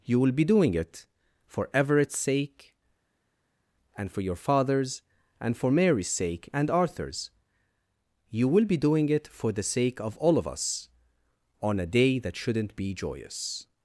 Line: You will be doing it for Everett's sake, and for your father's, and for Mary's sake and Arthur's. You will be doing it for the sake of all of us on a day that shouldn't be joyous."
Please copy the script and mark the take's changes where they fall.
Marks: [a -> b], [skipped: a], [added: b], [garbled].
You will be doing it for Everett's sake, and for your father's, and for Mary's sake and Arthur's. You will be doing it for the sake of all of us on a day that shouldn't be joyous."